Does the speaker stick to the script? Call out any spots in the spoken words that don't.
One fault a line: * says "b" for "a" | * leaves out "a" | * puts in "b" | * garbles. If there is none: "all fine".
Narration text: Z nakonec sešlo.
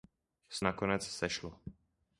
all fine